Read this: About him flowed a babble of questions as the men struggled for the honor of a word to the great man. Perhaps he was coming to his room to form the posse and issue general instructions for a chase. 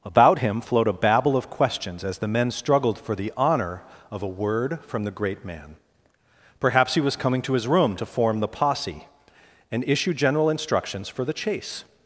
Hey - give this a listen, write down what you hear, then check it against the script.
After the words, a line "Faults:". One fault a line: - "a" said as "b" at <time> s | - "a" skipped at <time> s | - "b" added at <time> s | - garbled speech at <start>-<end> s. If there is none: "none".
About him flowed a babble of questions as the men struggled for the honor of a word from the great man. Perhaps he was coming to his room to form the posse and issue general instructions for the chase.
Faults:
- "to" said as "from" at 4.8 s
- "a" said as "the" at 11.2 s